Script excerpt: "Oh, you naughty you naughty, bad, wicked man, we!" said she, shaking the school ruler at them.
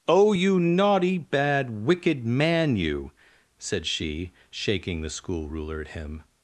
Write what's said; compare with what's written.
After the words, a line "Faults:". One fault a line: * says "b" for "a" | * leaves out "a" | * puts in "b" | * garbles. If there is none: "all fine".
"Oh, you naughty, bad, wicked man, you!" said she, shaking the school ruler at him.
Faults:
* leaves out "you naughty"
* says "you" for "we"
* says "him" for "them"